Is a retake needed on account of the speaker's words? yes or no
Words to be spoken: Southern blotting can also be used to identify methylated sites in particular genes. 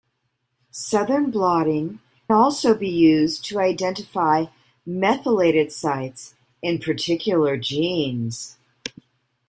yes